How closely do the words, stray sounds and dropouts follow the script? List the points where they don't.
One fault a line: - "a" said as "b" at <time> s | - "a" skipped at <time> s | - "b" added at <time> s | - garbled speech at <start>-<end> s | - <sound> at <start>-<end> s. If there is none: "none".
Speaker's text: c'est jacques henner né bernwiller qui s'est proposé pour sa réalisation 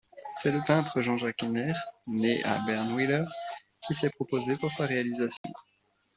- "le peintre jean" added at 0.5 s
- "à" added at 2.5 s
- dropout at 5.4-5.4 s